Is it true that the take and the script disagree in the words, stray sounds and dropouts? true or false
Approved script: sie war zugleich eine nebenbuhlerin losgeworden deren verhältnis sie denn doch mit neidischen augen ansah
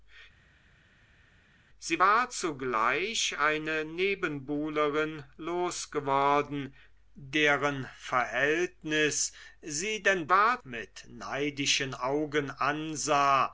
true